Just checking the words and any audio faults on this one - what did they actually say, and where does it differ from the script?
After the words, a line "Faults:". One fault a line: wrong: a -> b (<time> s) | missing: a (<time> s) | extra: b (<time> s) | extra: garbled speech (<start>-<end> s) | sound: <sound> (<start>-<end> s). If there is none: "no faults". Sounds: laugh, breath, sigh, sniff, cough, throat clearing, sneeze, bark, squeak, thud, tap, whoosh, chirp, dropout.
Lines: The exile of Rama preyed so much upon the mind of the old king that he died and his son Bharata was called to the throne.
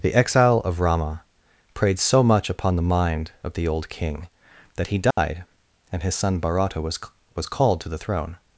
The exile of Rama preyed so much upon the mind of the old king that he died and his son Bharata was was called to the throne.
Faults:
sound: dropout (5.1-5.2 s)
extra: was (7.4 s)